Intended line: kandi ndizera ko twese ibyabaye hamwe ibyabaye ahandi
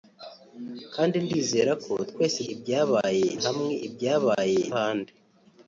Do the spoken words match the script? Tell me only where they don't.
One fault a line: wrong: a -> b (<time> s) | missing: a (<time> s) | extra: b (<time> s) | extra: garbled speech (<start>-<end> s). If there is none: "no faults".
no faults